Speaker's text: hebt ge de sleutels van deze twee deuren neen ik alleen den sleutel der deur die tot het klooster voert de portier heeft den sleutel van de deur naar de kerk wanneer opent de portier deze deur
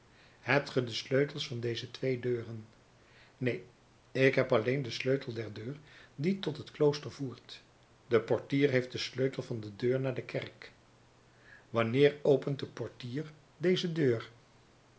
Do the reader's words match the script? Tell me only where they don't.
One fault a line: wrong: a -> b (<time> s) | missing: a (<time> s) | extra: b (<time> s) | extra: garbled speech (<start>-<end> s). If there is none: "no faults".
extra: heb (4.3 s)